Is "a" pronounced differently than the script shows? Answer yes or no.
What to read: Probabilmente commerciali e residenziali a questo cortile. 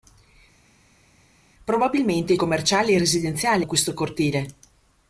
no